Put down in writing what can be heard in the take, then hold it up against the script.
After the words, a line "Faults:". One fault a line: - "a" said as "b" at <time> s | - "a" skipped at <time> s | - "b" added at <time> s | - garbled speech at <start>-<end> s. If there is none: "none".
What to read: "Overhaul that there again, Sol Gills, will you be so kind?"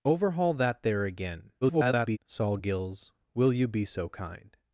"Overhaul that there again, [garbled] Sol Gills, will you be so kind?"
Faults:
- garbled speech at 1.6-2.2 s